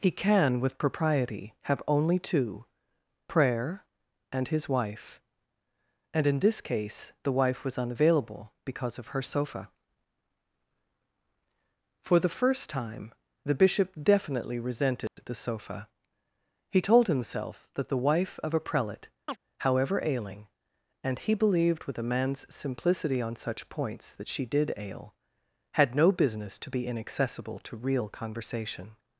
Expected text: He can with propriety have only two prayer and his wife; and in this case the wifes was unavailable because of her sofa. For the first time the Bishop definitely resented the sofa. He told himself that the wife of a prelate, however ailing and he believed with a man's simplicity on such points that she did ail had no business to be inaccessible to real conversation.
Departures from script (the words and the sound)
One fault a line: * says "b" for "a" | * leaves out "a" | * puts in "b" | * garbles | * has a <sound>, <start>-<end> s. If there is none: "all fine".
* says "wife" for "wifes"
* has a dropout, 15.1-15.2 s
* has a chirp, 19.3-19.4 s